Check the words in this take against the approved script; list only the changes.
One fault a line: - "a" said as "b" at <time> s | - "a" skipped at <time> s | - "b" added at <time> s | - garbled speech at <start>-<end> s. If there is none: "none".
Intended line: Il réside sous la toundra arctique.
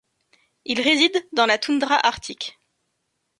- "sous" said as "dans" at 1.3 s